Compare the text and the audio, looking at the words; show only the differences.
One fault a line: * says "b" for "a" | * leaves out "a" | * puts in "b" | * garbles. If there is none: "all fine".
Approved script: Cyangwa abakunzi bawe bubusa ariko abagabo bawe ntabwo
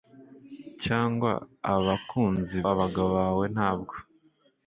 * leaves out "bawe bubusa ariko"